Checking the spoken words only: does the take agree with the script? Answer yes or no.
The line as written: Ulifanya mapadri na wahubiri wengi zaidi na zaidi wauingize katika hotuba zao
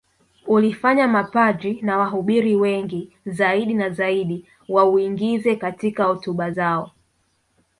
yes